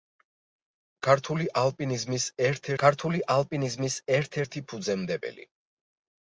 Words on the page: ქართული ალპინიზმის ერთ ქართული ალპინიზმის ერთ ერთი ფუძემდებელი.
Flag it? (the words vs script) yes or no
no